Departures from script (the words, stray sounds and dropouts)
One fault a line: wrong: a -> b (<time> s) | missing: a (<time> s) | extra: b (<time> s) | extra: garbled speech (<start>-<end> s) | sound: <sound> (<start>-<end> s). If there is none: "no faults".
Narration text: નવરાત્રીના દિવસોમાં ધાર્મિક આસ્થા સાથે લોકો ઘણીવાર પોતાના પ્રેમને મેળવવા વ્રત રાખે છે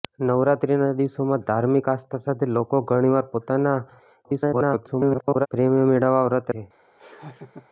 extra: garbled speech (4.2-5.5 s)
missing: રાખે (6.5 s)
sound: laugh (7.0-7.7 s)